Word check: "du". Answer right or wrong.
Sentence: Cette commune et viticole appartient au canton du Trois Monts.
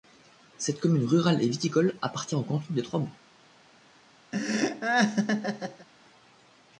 wrong